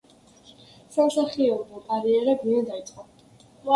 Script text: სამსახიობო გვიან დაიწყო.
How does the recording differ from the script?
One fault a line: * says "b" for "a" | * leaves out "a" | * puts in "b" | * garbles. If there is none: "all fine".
* puts in "კარიერა"